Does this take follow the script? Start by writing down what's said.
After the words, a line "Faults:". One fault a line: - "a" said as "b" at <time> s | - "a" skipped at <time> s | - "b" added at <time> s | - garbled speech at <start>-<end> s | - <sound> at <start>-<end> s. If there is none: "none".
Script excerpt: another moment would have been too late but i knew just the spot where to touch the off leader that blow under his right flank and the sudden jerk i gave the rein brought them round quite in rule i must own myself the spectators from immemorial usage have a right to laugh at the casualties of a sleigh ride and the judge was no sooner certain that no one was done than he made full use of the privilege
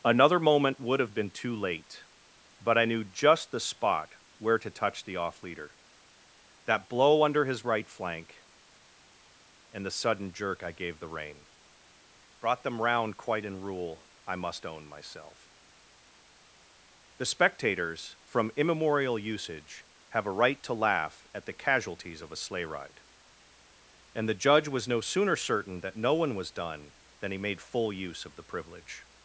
another moment would have been too late but i knew just the spot where to touch the off leader that blow under his right flank and the sudden jerk i gave the rein brought them round quite in rule i must own myself the spectators from immemorial usage have a right to laugh at the casualties of a sleigh ride and the judge was no sooner certain that no one was done than he made full use of the privilege
Faults:
none